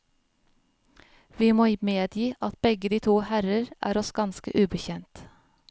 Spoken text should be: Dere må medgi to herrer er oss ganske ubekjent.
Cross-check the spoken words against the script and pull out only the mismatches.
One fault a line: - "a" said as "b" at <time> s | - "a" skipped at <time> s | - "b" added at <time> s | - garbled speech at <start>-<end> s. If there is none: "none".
- "Dere" said as "Vi" at 1.4 s
- "at begge de" added at 2.4 s